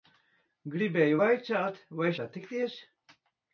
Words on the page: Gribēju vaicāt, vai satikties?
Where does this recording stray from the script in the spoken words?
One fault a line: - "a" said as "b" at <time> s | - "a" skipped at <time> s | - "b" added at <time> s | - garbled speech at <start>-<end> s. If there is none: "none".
none